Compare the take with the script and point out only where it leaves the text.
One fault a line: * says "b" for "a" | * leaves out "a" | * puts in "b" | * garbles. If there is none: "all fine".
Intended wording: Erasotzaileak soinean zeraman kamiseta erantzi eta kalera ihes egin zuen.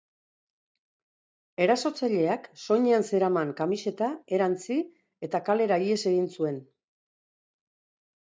all fine